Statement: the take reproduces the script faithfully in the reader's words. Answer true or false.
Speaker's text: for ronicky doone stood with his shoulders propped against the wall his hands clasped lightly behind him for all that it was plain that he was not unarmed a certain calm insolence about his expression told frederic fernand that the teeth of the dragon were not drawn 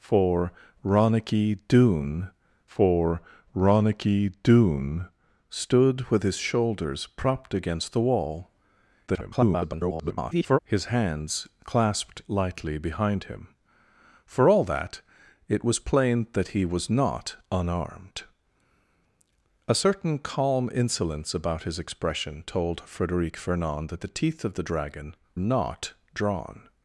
false